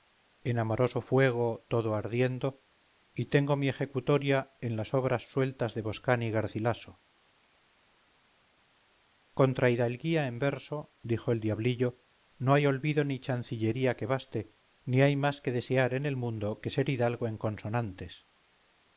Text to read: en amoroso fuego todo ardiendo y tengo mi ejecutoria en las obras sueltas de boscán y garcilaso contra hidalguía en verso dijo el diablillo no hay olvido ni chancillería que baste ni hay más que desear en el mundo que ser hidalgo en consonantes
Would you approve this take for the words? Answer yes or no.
yes